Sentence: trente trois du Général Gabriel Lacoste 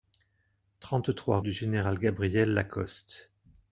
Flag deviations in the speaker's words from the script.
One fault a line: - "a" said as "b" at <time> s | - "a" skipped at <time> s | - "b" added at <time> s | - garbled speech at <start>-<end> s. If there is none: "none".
none